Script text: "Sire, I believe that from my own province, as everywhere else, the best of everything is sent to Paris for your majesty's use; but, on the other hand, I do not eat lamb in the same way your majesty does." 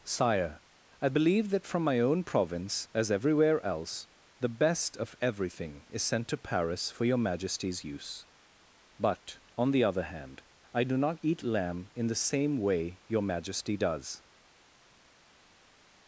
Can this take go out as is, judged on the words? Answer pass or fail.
pass